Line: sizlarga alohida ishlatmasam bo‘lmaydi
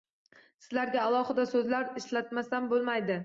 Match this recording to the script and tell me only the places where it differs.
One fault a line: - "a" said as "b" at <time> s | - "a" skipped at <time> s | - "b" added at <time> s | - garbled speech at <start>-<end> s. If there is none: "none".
- "so‘zlar" added at 1.5 s